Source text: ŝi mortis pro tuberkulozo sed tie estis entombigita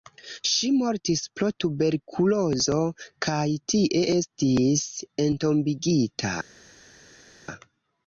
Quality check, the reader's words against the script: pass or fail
fail